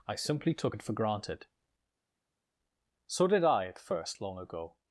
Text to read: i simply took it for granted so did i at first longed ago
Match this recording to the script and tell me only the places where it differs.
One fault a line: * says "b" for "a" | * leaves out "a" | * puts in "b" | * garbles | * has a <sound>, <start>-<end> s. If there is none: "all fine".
* says "long" for "longed"